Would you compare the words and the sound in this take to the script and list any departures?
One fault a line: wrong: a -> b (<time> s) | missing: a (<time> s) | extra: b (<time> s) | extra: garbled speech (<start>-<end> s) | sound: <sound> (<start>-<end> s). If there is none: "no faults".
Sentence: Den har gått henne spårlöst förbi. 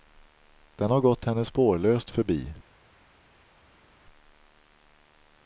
no faults